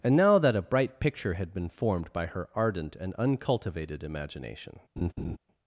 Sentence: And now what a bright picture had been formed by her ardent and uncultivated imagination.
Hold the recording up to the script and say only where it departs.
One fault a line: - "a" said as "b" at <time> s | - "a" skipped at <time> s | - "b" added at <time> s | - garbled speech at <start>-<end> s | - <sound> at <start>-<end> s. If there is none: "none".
- "what" said as "that" at 0.4 s
- laugh at 5.0-5.4 s